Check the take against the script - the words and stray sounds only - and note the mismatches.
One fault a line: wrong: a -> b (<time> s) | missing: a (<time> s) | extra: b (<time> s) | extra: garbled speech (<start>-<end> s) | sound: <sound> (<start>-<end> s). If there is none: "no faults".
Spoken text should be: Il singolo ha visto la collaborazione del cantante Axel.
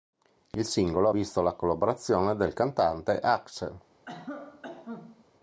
sound: cough (4.1-5.3 s)